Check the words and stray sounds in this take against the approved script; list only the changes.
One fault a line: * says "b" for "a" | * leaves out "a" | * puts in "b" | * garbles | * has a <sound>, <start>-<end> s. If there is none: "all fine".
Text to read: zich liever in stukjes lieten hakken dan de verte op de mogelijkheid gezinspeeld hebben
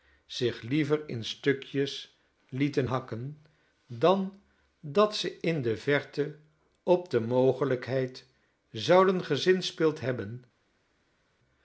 * puts in "dat ze in"
* puts in "zouden"